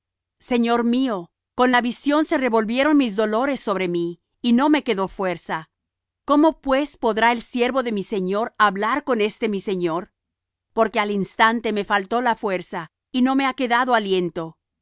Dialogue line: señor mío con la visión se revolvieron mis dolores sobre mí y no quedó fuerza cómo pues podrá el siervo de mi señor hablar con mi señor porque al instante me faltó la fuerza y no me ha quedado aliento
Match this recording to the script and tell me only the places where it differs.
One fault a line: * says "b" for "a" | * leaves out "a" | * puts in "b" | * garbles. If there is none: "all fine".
* puts in "me"
* puts in "este"